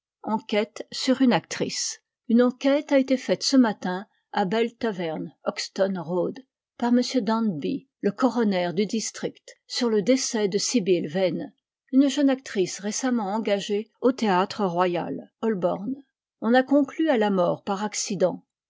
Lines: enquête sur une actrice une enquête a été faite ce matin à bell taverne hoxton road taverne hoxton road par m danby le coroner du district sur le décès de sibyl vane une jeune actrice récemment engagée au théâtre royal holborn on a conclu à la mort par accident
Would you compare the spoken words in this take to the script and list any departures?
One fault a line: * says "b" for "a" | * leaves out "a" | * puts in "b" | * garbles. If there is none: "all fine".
* leaves out "taverne hoxton road"